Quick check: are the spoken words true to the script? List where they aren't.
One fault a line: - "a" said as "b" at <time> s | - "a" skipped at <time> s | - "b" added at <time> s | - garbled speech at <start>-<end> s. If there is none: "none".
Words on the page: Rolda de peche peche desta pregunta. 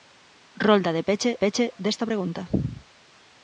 none